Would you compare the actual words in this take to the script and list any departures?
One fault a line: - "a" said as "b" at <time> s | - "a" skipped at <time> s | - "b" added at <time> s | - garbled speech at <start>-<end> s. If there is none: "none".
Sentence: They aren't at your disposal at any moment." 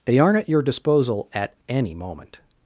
none